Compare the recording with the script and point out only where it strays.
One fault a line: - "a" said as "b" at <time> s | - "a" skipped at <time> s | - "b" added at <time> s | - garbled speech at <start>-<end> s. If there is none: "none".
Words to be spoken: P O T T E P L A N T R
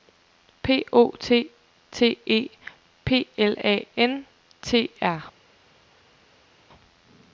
none